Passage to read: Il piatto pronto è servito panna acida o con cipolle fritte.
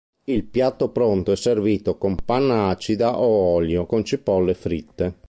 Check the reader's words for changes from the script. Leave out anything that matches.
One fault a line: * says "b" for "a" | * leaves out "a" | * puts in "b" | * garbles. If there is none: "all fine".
* puts in "con"
* puts in "olio"